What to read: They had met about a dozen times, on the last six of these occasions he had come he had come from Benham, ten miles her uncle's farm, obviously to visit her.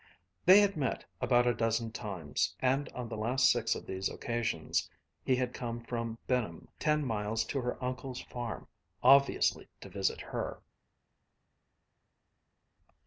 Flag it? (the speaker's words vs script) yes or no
yes